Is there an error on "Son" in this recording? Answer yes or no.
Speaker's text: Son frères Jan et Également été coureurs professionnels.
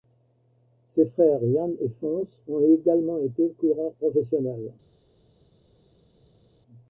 yes